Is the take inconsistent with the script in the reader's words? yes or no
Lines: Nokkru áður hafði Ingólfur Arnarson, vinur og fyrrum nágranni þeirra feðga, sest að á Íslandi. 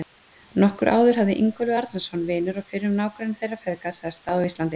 no